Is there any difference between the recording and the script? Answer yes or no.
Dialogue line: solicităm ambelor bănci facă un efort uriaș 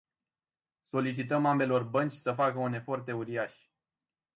yes